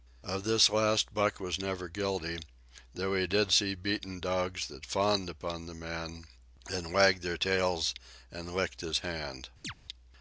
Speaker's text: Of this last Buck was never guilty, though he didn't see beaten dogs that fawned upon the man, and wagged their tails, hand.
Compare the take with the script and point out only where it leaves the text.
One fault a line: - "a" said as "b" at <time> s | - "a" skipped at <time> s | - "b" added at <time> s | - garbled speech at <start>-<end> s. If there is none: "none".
- "didn't" said as "did" at 3.3 s
- "and licked his" added at 8.3 s